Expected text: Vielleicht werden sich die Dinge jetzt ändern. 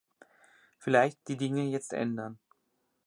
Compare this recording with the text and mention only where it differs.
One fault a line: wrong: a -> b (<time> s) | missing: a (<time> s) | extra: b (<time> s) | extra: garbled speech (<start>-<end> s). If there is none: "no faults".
missing: werden sich (1.2 s)